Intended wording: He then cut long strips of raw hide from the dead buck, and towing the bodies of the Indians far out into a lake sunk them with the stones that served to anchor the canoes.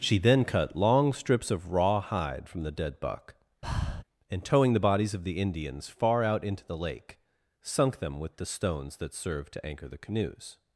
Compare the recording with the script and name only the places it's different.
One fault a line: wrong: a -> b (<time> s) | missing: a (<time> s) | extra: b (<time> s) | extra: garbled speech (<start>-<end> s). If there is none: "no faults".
wrong: He -> She (0.0 s)
wrong: a -> the (6.6 s)